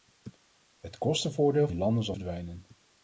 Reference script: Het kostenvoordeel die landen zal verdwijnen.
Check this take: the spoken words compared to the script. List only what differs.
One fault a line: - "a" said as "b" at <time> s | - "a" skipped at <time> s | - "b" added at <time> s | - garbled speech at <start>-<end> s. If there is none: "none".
none